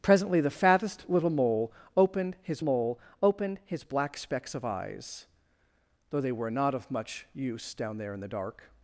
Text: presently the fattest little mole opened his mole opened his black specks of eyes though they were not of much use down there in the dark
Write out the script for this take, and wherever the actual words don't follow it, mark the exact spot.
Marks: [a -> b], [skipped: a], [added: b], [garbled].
presently the fattest little mole opened his mole opened his black specks of eyes though they were not of much use down there in the dark